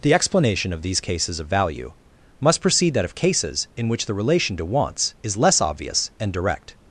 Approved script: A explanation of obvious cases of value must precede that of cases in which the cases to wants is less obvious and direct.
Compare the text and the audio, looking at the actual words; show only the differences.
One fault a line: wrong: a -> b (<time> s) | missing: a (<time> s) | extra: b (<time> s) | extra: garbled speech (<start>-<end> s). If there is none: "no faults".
wrong: A -> The (0.0 s)
wrong: obvious -> these (0.8 s)
wrong: cases -> relation (4.2 s)